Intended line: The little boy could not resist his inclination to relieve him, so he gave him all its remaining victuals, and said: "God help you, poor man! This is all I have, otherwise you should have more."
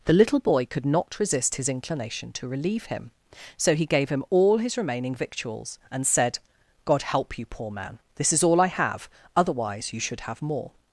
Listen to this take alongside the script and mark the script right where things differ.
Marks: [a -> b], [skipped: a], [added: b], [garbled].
The little boy could not resist his inclination to relieve him, so he gave him all [its -> his] remaining victuals, and said: "God help you, poor man! This is all I have, otherwise you should have more."